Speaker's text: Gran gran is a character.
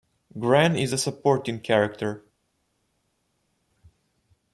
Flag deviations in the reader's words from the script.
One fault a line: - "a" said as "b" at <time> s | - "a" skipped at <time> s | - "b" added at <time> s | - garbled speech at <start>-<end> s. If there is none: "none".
- "gran" skipped at 0.8 s
- "supporting" added at 1.0 s